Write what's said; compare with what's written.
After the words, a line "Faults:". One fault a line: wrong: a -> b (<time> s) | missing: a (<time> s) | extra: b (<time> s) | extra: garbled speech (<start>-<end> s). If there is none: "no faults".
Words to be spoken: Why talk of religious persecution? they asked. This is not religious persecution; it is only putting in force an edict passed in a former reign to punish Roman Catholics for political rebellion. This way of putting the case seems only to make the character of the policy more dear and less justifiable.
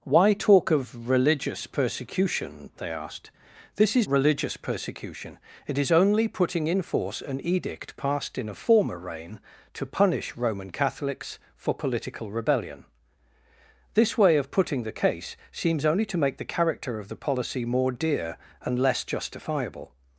Why talk of religious persecution? they asked. This is religious persecution; it is only putting in force an edict passed in a former reign to punish Roman Catholics for political rebellion. This way of putting the case seems only to make the character of the policy more dear and less justifiable.
Faults:
missing: not (4.1 s)